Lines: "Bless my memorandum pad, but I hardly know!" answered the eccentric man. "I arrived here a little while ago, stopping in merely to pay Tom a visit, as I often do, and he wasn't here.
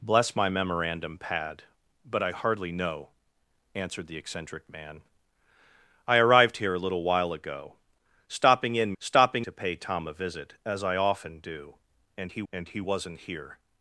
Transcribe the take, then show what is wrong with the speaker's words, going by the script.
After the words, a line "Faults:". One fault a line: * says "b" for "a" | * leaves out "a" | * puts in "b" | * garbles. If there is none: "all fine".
"Bless my memorandum pad, but I hardly know!" answered the eccentric man. "I arrived here a little while ago, stopping in stopping to pay Tom a visit, as I often do, and he and he wasn't here.
Faults:
* says "stopping" for "merely"
* puts in "and he"